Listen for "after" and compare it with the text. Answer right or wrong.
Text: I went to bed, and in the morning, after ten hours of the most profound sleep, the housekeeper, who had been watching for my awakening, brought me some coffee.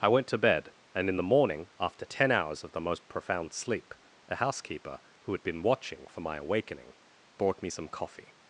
right